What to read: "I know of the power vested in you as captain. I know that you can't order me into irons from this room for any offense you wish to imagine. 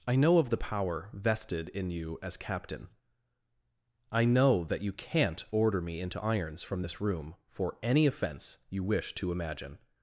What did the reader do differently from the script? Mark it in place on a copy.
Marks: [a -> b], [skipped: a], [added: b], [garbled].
"I know of the power vested in you as captain. I know that you can't order me into irons from this room for any offense you wish to imagine.